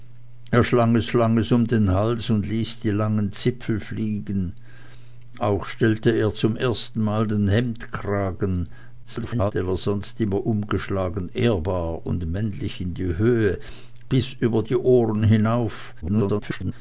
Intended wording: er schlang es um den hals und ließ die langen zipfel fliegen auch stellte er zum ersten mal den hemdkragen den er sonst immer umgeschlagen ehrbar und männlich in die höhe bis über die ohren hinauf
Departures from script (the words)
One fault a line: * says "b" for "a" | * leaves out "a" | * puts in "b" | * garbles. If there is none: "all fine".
* puts in "schlang es"
* garbles
* garbles